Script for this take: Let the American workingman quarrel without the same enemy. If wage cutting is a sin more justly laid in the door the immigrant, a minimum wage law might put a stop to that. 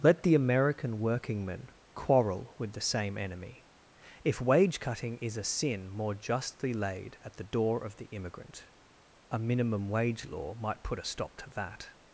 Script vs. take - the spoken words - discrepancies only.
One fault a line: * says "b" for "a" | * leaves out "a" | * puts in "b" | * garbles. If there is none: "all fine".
* says "with" for "without"
* says "at" for "in"
* puts in "of"